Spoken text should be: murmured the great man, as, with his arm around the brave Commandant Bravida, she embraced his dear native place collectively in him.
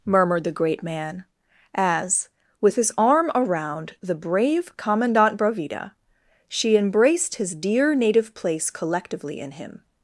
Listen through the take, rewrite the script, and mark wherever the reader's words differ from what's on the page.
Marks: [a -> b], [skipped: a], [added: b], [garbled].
murmured the great man, as, with his arm around the brave Commandant Bravida, she embraced his dear native place collectively in him.